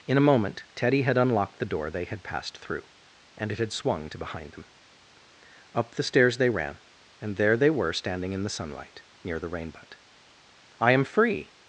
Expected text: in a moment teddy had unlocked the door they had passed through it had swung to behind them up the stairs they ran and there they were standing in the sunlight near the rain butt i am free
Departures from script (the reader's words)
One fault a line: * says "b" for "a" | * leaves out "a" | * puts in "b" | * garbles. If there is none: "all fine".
* puts in "and"